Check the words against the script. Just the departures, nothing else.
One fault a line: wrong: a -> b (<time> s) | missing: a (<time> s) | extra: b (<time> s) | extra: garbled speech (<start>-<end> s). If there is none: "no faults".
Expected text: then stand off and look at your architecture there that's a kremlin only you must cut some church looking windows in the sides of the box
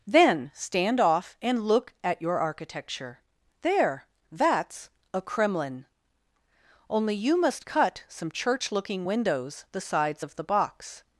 missing: in (9.7 s)